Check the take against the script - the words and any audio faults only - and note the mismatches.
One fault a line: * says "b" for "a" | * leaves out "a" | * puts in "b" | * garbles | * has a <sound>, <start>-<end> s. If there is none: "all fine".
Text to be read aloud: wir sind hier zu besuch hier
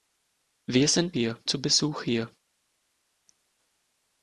all fine